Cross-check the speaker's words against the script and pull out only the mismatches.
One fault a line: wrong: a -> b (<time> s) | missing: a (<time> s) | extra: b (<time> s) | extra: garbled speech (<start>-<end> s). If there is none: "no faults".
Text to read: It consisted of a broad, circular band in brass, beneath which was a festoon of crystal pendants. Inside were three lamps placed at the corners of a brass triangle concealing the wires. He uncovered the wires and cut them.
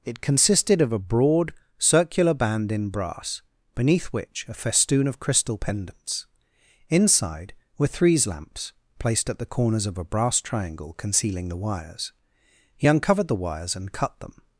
missing: was (4.5 s)
wrong: three -> threes (7.9 s)